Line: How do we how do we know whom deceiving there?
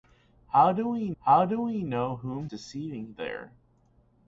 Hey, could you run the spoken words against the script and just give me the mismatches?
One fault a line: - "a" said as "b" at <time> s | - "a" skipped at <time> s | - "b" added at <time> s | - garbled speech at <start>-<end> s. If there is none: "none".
none